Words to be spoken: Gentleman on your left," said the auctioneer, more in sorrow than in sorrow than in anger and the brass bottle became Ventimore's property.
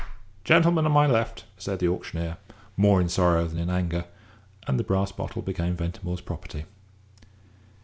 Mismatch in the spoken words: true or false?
true